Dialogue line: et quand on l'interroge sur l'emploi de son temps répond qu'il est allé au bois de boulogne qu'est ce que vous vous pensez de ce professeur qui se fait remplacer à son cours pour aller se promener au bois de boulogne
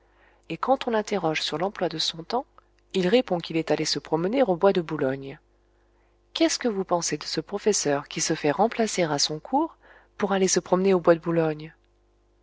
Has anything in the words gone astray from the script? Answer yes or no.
yes